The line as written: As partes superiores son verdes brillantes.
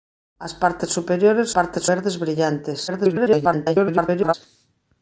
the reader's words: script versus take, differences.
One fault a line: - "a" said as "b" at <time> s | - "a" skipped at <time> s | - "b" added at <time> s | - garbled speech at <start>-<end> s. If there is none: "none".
- "son" said as "partes" at 1.5 s
- garbled speech at 2.9-4.3 s